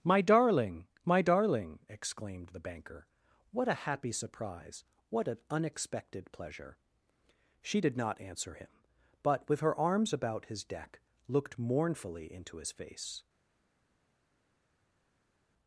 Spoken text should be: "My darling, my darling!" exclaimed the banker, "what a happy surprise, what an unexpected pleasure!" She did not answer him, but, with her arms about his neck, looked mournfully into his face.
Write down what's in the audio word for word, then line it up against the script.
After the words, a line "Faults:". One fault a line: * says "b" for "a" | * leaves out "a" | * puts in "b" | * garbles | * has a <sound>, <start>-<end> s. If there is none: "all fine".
"My darling, my darling!" exclaimed the banker, "what a happy surprise, what an unexpected pleasure!" She did not answer him, but, with her arms about his deck, looked mournfully into his face.
Faults:
* says "deck" for "neck"